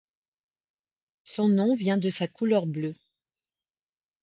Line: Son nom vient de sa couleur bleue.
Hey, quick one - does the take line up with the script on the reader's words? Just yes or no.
yes